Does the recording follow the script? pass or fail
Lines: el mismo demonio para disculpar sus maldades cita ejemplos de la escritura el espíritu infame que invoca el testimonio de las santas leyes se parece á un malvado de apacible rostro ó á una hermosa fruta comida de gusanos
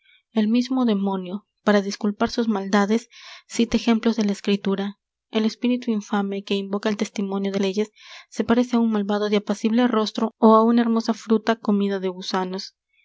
fail